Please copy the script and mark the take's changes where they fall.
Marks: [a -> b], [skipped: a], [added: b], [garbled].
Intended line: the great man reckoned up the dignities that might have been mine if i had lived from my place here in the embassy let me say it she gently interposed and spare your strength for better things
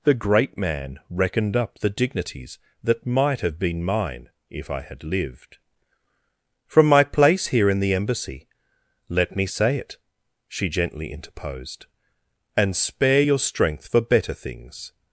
the great man reckoned up the dignities that might have been mine if i had lived from my place here in the embassy let me say it she gently interposed and spare your strength for better things